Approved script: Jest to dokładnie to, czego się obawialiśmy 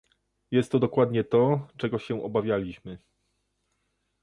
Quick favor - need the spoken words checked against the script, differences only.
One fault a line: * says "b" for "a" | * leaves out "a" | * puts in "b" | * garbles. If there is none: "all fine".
all fine